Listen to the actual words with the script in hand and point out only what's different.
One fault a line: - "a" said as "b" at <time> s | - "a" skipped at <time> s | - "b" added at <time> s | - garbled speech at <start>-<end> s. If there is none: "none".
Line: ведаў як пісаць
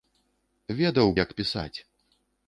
none